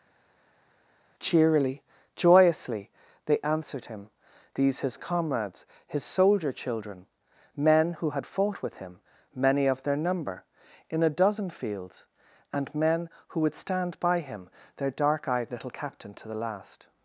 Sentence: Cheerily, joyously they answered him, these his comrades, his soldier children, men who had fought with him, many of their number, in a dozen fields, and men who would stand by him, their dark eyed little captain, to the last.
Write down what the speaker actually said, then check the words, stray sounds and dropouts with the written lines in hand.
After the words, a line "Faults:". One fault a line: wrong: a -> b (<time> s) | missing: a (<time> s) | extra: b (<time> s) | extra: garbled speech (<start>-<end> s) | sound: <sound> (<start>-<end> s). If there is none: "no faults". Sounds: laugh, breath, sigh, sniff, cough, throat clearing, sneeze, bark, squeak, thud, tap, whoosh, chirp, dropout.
Cheerily, joyously they answered him, these his comrades, his soldier children, men who had fought with him, many of their number, in a dozen fields, and men who would stand by him, their dark eyed little captain, to the last.
Faults:
no faults